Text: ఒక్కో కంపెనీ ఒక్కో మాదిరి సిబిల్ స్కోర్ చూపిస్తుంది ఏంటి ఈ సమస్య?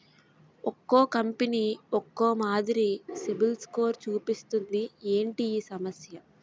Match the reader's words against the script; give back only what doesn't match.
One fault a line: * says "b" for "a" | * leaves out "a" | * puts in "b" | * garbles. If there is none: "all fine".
all fine